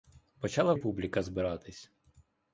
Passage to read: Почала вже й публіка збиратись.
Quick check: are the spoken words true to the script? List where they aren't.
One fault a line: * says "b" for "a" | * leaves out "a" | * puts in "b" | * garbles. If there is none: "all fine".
* leaves out "вже"